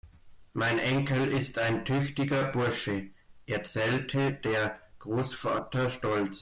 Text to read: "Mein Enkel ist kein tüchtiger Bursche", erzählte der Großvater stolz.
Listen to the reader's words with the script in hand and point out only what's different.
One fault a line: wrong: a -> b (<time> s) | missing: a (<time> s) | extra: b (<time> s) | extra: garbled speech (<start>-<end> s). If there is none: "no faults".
wrong: kein -> ein (1.6 s)